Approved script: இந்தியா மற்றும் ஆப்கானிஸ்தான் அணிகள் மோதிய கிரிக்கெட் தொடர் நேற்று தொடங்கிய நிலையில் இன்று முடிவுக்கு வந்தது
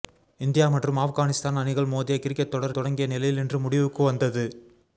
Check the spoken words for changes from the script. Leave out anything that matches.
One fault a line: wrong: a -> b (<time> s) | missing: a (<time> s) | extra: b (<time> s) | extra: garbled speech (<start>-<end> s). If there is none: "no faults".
missing: நேற்று (2.8 s)